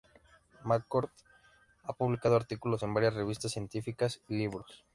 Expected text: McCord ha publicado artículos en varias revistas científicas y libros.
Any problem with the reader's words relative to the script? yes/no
no